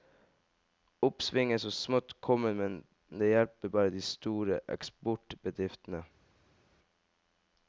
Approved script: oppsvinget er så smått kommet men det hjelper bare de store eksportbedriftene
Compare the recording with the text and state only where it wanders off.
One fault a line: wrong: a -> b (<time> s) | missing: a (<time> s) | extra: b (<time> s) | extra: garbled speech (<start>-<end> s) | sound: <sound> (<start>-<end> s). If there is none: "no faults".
no faults